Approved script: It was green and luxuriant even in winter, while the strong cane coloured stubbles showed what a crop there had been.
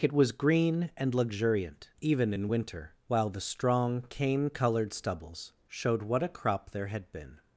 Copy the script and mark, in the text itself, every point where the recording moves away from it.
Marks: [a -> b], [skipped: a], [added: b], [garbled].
It was green and luxuriant even in winter, while the strong cane coloured stubbles showed what a crop there had been.